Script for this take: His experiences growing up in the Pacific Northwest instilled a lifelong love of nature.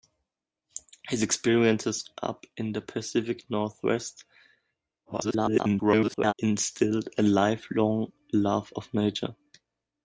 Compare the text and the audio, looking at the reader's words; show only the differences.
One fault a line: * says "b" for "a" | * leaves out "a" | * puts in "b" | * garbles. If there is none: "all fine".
* leaves out "growing"
* garbles